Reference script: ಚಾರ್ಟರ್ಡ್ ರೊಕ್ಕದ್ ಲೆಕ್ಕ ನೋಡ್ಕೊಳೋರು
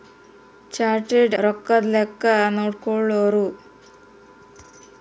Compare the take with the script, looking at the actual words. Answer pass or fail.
pass